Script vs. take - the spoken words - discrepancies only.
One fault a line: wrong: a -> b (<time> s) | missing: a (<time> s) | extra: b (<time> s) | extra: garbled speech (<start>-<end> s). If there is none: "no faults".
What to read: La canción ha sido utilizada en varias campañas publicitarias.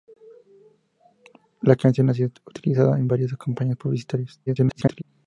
extra: garbled speech (4.5-5.0 s)